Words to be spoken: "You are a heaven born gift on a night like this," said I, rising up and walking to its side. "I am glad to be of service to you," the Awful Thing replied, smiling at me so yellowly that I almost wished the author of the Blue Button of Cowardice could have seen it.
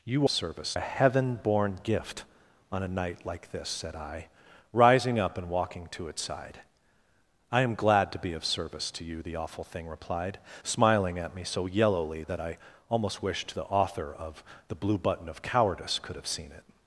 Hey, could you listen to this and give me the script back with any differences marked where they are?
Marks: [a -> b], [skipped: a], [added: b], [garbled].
"You [are -> service] a heaven born gift on a night like this," said I, rising up and walking to its side. "I am glad to be of service to you," the Awful Thing replied, smiling at me so yellowly that I almost wished the author of the Blue Button of Cowardice could have seen it.